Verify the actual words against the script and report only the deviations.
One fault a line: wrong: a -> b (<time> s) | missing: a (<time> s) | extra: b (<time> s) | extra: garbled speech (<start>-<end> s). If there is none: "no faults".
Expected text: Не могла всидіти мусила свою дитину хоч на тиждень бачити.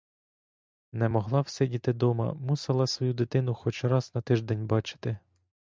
extra: дома (1.9 s)
extra: раз (3.8 s)